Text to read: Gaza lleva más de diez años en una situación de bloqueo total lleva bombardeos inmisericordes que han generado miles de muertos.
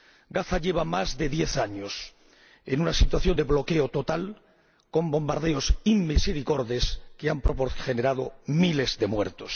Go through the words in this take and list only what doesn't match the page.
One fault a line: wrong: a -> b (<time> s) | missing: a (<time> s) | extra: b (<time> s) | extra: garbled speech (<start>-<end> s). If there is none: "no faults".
wrong: lleva -> con (4.9 s)